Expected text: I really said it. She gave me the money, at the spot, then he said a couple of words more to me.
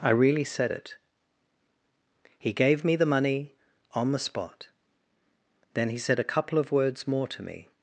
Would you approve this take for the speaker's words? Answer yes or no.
no